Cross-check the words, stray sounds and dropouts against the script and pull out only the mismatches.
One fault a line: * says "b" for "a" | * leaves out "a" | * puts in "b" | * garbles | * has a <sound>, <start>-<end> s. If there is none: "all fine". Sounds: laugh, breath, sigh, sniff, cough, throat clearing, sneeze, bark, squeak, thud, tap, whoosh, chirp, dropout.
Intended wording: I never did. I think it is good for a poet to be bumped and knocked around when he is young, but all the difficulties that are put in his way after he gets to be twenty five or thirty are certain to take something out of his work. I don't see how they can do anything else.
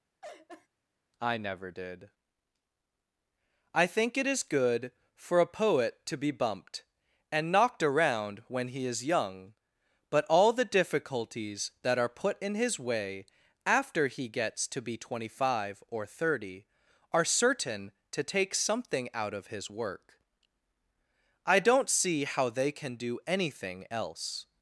* has a laugh, 0.2-0.7 s